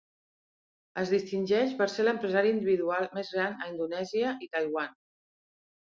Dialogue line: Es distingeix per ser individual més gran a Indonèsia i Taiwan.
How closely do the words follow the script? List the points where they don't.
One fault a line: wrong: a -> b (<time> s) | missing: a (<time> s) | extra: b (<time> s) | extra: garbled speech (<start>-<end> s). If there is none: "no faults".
extra: l'empresari (2.1 s)